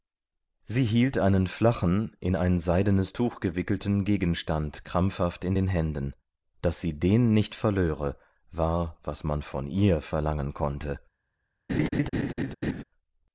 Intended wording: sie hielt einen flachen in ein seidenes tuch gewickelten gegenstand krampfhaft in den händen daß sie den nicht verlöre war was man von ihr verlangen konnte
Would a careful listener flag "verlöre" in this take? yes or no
no